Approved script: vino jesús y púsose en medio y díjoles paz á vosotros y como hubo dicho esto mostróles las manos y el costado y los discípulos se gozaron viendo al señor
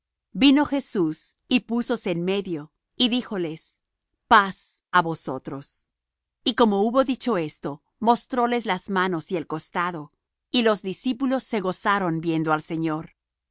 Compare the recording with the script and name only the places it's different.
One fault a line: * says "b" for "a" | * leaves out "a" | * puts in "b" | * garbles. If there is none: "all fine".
all fine